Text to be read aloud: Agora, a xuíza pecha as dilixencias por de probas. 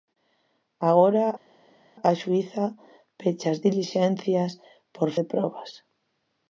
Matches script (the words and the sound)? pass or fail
pass